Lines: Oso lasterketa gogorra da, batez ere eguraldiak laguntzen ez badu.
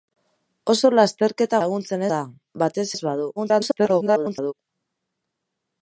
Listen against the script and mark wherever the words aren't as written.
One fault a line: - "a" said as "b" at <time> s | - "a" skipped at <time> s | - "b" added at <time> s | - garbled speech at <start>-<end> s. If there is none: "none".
- "gogorra" said as "laguntzen" at 1.6 s
- "ere eguraldiak laguntzen" skipped at 2.8 s
- garbled speech at 3.4-4.5 s